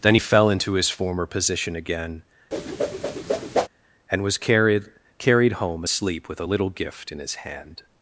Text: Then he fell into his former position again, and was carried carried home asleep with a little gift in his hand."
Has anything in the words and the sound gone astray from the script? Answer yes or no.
yes